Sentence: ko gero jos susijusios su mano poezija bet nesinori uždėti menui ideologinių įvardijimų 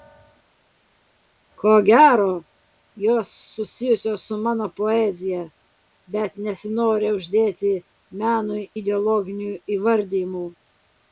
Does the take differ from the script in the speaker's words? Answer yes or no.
no